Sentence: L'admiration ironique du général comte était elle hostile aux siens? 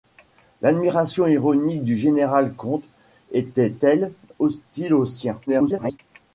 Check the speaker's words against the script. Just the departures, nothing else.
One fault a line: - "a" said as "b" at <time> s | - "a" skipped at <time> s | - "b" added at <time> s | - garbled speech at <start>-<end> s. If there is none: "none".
- garbled speech at 5.5-6.0 s